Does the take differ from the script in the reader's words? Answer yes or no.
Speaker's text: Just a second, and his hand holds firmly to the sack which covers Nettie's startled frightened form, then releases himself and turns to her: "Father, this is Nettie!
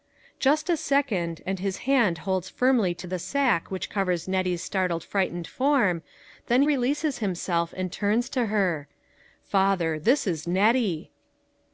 no